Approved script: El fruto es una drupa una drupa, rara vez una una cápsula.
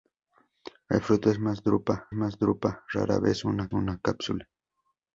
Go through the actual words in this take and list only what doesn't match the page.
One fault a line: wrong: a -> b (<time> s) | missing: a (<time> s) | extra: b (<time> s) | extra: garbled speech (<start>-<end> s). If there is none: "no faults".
no faults